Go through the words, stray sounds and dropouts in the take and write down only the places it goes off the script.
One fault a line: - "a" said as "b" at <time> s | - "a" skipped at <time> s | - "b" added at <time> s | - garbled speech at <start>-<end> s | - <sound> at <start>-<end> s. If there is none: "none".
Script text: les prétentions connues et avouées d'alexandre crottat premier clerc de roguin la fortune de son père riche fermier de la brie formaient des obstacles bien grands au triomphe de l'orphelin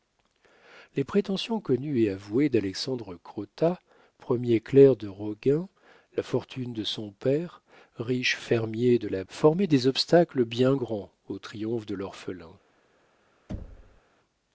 - "brie" skipped at 9.2 s
- thud at 13.5-14.0 s